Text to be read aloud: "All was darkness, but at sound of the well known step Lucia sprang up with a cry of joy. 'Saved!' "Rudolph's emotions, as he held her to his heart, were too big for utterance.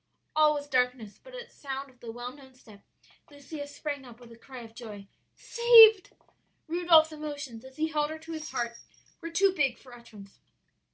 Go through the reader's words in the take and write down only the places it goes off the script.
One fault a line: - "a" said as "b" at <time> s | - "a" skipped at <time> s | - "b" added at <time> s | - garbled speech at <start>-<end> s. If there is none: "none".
none